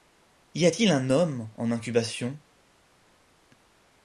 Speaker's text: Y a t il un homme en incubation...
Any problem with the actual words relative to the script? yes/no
no